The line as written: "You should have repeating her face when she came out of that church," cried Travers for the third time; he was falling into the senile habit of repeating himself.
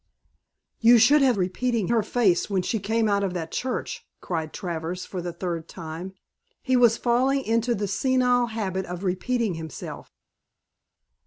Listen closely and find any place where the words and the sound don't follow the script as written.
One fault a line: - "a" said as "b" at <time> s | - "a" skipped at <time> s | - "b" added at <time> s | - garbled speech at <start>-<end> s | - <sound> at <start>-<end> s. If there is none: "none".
none